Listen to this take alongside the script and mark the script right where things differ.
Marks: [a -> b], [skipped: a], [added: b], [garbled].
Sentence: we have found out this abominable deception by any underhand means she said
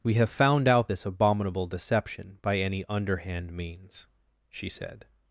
we have found out this abominable deception by any underhand means she said